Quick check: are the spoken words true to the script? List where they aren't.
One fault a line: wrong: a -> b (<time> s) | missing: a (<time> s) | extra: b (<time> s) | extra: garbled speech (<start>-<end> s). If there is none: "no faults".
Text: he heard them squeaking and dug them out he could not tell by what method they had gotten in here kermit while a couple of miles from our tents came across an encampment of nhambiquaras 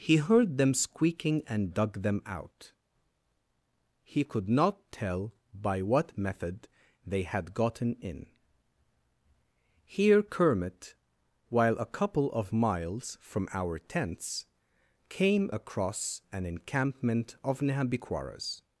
no faults